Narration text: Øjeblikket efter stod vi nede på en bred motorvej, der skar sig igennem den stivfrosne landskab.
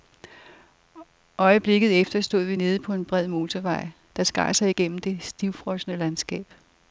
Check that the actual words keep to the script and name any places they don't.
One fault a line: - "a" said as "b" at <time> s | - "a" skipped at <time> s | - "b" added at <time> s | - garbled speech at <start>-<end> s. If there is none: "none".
- "den" said as "det" at 5.0 s